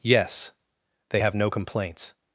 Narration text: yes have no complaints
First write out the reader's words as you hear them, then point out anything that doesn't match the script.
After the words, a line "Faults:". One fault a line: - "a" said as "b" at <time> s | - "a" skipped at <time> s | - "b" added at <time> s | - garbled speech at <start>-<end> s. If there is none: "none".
yes they have no complaints
Faults:
- "they" added at 1.1 s